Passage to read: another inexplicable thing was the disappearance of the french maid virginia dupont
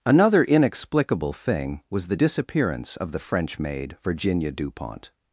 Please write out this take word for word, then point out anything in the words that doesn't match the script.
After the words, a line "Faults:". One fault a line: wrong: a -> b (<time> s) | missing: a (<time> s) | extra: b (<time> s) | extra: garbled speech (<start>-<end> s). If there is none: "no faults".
another inexplicable thing was the disappearance of the french maid virginia dupont
Faults:
no faults